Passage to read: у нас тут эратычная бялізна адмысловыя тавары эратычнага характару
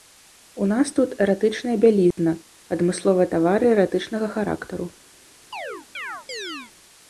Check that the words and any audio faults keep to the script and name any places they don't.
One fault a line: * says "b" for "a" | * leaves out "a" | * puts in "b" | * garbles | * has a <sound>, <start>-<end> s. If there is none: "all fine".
* has a dropout, 2.1-2.2 s
* has a chirp, 5.5-6.7 s